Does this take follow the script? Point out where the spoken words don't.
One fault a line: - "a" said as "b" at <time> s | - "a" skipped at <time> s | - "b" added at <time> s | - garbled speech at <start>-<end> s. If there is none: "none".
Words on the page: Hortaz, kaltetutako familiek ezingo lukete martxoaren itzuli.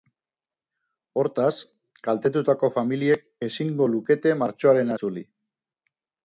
none